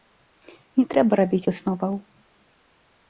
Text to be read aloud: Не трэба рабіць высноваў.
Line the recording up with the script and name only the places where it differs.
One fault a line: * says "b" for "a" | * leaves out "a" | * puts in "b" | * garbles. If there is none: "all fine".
all fine